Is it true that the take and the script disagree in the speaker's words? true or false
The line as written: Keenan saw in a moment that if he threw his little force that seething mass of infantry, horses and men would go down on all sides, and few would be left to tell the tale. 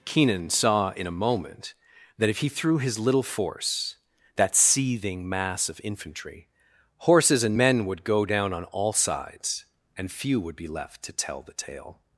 false